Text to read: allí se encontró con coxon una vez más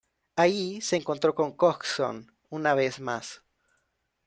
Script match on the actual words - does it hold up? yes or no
yes